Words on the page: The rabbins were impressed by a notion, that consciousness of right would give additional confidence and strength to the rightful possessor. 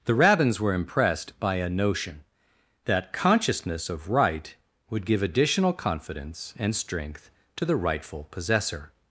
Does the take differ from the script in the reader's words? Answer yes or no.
no